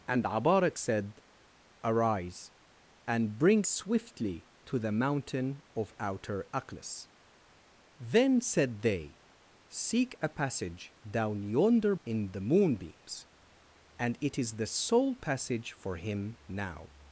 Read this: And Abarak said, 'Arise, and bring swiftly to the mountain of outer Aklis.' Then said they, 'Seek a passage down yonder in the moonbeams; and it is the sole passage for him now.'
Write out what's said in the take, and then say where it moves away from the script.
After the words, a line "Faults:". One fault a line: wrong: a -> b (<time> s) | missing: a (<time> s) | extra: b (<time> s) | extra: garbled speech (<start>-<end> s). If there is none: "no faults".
And Abarak said, 'Arise, and bring swiftly to the mountain of outer Aklis.' Then said they, 'Seek a passage down yonder in the moonbeams; and it is the sole passage for him now.'
Faults:
no faults